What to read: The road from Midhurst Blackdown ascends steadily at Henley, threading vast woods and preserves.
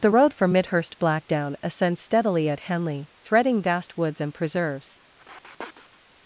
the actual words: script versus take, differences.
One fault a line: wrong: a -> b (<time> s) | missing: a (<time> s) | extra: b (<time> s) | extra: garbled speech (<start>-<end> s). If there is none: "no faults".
no faults